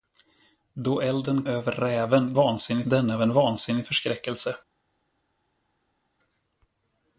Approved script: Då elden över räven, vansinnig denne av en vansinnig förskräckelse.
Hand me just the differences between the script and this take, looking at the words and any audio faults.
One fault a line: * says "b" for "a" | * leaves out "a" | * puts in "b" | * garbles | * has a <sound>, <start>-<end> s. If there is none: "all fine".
all fine